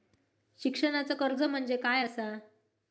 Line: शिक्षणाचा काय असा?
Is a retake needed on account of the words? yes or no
yes